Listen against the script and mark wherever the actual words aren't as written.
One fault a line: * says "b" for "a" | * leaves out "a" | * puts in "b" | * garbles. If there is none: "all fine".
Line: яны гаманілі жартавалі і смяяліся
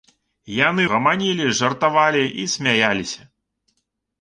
all fine